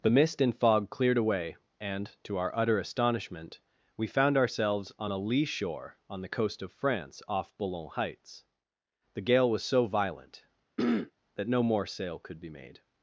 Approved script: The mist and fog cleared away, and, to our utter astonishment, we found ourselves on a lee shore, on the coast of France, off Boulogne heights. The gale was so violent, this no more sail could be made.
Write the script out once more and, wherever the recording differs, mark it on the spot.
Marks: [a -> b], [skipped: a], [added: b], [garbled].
The mist and fog cleared away, and, to our utter astonishment, we found ourselves on a lee shore, on the coast of France, off Boulogne heights. The gale was so violent, [this -> that] no more sail could be made.